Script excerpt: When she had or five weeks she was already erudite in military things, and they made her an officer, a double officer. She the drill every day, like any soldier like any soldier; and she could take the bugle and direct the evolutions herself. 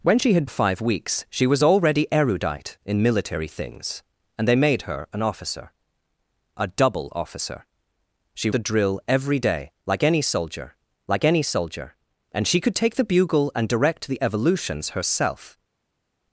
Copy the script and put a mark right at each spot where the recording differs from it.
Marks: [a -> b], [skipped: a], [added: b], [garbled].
When she had or five weeks she was already erudite in military things, and they made her an officer, a double officer. She the drill every day, like any soldier like any soldier; and she could take the bugle and direct the evolutions herself.